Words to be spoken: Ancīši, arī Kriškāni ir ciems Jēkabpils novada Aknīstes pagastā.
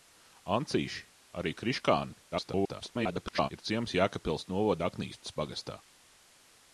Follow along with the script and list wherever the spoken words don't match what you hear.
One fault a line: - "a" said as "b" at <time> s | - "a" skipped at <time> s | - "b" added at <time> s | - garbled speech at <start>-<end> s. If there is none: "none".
- garbled speech at 2.3-3.5 s